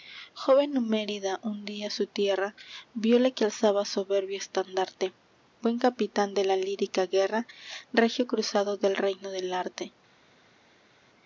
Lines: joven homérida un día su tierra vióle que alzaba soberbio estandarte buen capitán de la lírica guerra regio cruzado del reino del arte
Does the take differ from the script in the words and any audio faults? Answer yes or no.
no